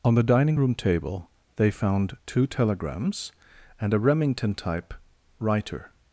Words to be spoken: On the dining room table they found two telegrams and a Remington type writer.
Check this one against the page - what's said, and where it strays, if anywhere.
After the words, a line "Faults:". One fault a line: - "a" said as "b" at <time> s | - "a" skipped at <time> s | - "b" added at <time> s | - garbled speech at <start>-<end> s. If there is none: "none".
On the dining room table they found two telegrams and a Remington type writer.
Faults:
none